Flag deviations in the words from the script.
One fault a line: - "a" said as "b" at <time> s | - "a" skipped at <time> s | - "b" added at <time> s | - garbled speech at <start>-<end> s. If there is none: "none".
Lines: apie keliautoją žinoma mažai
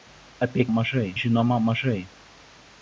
- "keliautoją" said as "mažai" at 0.7 s